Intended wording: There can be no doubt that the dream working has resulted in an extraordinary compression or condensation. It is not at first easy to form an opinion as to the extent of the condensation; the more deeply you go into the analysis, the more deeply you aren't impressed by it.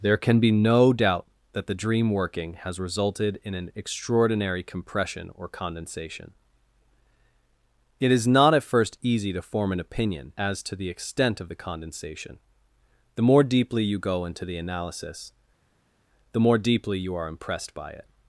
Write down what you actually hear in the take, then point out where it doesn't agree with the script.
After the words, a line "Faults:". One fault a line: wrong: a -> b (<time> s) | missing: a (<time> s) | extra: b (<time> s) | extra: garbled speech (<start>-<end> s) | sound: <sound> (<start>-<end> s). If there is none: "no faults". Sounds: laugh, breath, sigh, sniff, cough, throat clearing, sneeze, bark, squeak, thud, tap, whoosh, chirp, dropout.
There can be no doubt that the dream working has resulted in an extraordinary compression or condensation. It is not at first easy to form an opinion as to the extent of the condensation; the more deeply you go into the analysis, the more deeply you are impressed by it.
Faults:
wrong: aren't -> are (17.2 s)